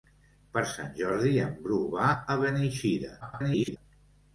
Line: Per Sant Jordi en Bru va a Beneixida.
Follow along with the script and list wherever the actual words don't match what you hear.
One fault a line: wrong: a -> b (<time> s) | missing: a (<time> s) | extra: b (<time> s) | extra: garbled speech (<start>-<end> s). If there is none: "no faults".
extra: garbled speech (3.2-3.8 s)